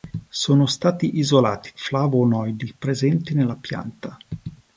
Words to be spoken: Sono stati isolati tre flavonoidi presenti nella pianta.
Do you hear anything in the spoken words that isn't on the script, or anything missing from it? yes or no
yes